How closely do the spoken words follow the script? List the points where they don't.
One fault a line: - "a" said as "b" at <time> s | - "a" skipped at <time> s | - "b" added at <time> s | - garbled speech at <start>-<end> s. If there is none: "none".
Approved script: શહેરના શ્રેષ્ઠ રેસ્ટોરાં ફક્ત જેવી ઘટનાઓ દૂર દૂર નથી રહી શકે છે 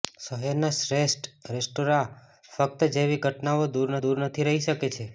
none